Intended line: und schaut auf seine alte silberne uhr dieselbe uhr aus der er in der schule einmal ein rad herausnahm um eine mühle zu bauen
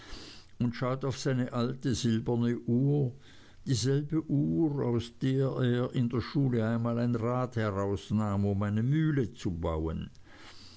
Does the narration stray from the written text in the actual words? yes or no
no